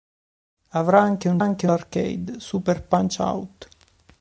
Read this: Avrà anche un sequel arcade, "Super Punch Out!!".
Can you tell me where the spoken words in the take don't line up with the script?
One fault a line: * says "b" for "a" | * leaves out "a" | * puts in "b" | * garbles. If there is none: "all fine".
* says "anche" for "sequel"